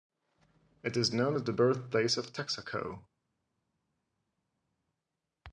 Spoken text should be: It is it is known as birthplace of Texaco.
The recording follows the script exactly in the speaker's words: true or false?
false